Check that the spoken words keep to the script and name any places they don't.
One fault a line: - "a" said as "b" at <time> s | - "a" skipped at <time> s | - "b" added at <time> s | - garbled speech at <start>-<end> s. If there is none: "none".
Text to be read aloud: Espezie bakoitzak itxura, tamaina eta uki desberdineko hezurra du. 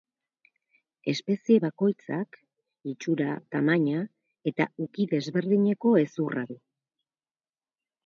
none